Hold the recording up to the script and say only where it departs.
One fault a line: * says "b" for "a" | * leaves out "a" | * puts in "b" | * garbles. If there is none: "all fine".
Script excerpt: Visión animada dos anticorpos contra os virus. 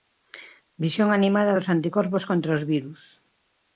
all fine